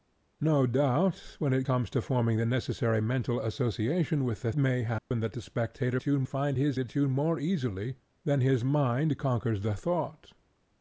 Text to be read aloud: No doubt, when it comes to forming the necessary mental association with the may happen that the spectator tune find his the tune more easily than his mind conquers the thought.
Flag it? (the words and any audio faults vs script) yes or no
yes